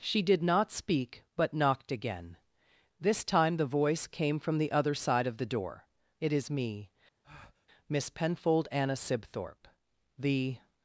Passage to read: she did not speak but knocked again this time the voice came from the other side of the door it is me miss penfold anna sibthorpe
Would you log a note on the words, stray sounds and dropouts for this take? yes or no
yes